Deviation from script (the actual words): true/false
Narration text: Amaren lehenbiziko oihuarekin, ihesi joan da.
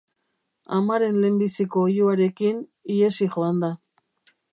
false